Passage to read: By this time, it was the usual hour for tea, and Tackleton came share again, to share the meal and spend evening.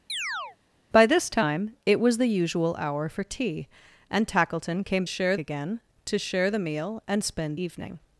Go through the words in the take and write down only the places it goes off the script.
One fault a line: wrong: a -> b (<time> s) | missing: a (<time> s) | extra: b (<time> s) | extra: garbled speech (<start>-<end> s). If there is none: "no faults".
no faults